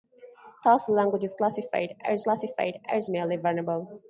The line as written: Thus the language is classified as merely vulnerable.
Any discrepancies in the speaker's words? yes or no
yes